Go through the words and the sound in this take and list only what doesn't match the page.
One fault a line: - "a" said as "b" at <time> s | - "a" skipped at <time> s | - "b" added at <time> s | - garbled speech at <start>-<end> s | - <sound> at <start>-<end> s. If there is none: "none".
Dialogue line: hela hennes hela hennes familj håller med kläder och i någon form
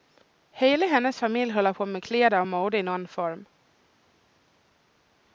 - "hela hennes" skipped at 1.2 s
- "på" added at 1.7 s
- "mode" added at 2.5 s